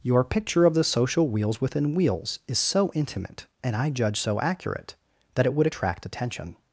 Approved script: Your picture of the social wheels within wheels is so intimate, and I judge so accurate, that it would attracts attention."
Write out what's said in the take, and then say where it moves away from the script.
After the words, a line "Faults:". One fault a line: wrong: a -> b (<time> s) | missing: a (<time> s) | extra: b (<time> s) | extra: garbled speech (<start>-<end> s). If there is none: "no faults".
Your picture of the social wheels within wheels is so intimate, and I judge so accurate, that it would attract attention."
Faults:
wrong: attracts -> attract (5.6 s)